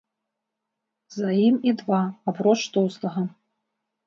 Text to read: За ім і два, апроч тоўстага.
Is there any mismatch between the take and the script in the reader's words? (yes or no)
no